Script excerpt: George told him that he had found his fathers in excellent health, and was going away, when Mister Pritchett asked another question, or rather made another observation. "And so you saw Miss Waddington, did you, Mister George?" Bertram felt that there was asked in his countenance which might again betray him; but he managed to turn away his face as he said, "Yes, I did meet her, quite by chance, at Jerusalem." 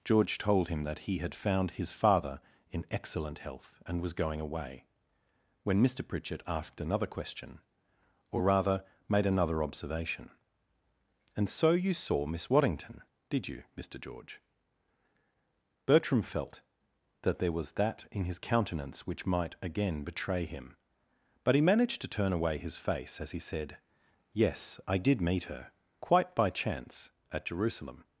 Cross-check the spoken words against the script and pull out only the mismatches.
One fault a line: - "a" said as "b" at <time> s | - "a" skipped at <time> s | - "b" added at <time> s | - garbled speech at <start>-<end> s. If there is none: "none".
- "fathers" said as "father" at 1.9 s
- "asked" said as "that" at 17.7 s